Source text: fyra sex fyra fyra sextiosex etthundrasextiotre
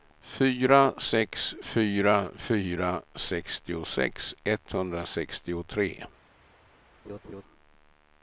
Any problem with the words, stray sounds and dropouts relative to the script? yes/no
yes